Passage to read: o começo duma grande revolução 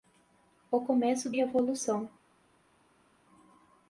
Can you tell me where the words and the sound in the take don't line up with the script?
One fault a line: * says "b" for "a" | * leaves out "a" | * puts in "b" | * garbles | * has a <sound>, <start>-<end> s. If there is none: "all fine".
* leaves out "duma grande"